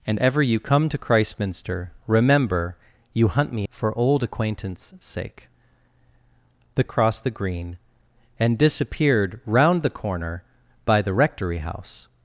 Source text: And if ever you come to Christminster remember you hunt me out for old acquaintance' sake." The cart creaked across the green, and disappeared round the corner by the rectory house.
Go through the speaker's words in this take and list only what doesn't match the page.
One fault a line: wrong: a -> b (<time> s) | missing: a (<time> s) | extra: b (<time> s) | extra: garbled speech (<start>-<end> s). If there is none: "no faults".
missing: if (0.2 s)
missing: out (3.7 s)
missing: cart creaked (6.8 s)